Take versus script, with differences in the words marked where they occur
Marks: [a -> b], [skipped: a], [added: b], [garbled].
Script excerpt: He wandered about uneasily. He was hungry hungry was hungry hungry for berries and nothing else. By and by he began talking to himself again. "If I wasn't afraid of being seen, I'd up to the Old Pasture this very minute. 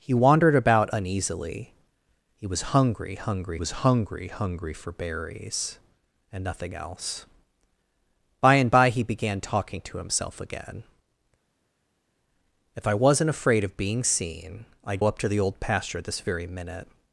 He wandered about uneasily. He was hungry hungry was hungry hungry for berries and nothing else. By and by he began talking to himself again. "If I wasn't afraid of being seen, I'd up to the Old Pasture this very minute.